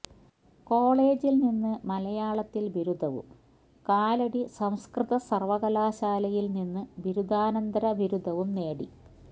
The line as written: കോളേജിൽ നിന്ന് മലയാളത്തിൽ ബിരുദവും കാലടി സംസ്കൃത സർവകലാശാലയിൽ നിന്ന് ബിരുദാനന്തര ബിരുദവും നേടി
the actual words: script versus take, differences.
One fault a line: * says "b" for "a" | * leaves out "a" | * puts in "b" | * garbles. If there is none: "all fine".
all fine